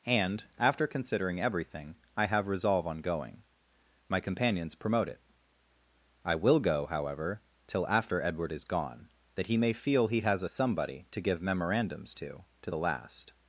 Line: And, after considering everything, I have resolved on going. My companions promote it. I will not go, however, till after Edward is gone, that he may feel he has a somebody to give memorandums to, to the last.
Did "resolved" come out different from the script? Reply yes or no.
yes